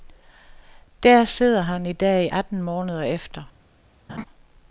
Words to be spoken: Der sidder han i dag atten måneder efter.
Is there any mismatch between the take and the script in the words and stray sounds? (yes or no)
yes